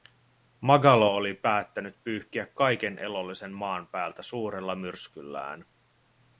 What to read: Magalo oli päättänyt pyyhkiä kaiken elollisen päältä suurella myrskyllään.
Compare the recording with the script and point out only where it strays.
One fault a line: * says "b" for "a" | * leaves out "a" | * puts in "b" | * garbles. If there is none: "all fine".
* puts in "maan"